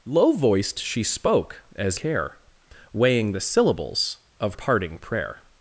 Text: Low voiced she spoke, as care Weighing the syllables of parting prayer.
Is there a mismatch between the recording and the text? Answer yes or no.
no